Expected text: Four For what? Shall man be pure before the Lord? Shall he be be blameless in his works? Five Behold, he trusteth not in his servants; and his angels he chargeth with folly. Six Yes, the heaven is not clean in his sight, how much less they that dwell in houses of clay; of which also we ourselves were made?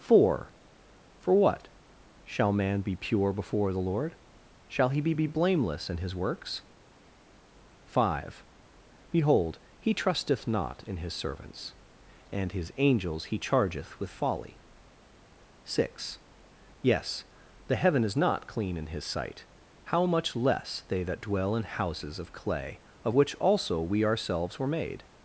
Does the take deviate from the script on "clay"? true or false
false